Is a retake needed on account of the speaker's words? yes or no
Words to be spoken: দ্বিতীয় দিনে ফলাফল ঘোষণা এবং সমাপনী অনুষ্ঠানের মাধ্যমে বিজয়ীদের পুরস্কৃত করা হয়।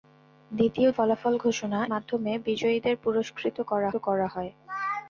yes